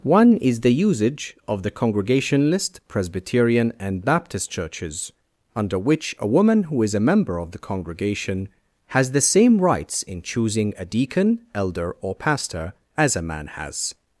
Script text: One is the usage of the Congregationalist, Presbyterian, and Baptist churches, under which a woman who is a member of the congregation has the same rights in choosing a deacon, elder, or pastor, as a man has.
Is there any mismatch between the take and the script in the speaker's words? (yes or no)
no